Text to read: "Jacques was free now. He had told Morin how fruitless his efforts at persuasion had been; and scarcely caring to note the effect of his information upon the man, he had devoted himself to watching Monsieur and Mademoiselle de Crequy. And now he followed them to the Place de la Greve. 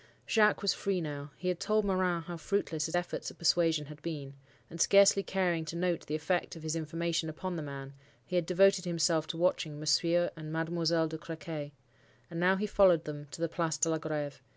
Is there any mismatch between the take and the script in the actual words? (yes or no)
no